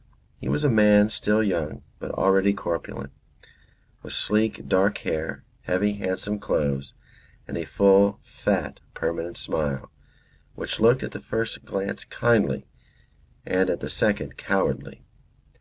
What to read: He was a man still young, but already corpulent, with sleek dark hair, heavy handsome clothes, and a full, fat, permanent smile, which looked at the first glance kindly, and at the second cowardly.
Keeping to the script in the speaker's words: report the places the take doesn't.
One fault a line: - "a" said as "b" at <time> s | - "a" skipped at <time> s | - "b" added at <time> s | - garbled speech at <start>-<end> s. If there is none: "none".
none